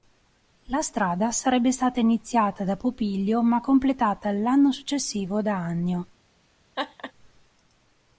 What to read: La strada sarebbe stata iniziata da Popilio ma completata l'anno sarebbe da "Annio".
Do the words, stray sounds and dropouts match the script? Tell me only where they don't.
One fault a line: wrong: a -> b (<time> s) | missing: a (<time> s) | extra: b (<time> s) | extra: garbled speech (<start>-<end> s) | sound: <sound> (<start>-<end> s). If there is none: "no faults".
wrong: sarebbe -> successivo (4.7 s)
sound: laugh (6.8-7.1 s)